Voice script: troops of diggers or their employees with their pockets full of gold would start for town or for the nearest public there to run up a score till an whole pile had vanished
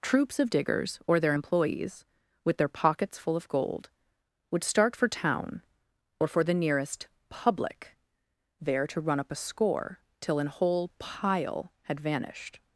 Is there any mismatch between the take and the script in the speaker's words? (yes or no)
no